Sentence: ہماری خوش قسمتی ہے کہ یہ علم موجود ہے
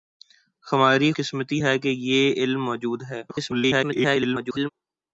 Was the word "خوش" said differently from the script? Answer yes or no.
yes